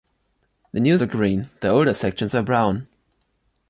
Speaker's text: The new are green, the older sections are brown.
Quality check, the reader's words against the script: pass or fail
pass